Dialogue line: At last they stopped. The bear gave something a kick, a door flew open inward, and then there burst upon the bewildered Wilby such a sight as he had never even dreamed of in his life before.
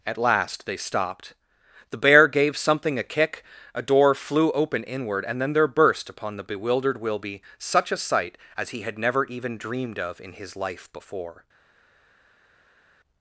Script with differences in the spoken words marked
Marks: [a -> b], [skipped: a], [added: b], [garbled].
At last they stopped. The bear gave something a kick, a door flew open inward, and then there burst upon the bewildered Wilby such a sight as he had never even dreamed of in his life before.